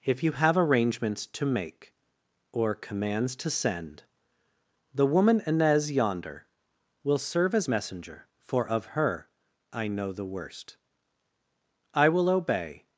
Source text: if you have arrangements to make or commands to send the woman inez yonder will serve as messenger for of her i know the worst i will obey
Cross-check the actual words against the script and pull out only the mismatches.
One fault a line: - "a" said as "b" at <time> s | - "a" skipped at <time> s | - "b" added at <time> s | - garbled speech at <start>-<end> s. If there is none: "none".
none